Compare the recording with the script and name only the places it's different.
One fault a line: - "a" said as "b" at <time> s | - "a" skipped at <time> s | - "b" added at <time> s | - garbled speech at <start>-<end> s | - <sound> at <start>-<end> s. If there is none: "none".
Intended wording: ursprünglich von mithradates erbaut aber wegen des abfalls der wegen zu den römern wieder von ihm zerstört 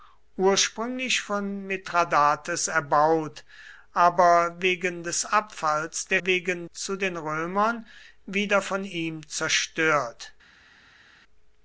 none